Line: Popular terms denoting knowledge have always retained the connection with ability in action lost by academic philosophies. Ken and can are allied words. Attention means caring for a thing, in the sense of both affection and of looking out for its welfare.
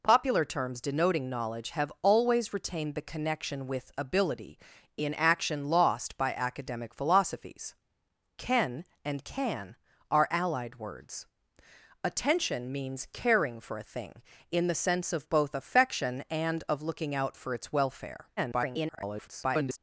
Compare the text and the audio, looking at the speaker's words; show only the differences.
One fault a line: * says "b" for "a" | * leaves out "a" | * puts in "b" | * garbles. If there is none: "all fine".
* garbles